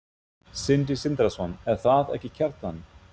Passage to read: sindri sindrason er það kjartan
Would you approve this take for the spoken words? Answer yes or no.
no